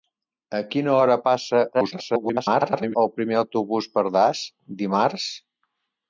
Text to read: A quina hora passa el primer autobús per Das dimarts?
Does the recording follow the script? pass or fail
fail